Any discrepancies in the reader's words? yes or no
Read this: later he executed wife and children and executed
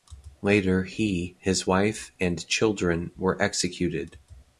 yes